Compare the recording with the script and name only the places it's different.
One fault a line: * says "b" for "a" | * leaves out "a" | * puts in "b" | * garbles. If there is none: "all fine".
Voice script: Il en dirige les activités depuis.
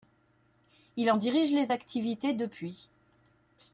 all fine